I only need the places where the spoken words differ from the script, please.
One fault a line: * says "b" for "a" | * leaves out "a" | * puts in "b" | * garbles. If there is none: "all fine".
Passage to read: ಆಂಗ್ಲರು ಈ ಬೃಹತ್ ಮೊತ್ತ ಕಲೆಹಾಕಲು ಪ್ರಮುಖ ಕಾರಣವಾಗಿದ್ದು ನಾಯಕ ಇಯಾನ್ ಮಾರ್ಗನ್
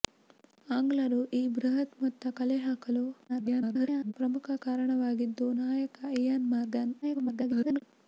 * garbles
* garbles